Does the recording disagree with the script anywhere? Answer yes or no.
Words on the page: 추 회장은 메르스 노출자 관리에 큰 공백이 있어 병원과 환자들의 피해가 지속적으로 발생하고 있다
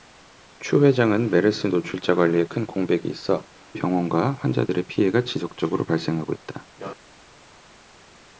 no